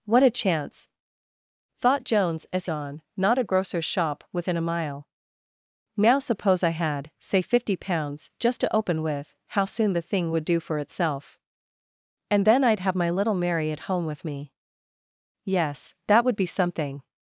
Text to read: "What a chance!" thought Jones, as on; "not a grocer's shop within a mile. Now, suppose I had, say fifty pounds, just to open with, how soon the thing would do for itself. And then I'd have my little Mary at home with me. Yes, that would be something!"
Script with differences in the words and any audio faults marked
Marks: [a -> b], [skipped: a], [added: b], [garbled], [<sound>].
"What a chance!" thought Jones, as on; "not a grocer's shop within a mile. Now, suppose I had, say fifty pounds, just to open with, how soon the thing would do for itself. And then I'd have my little Mary at home with me. Yes, that would be something!"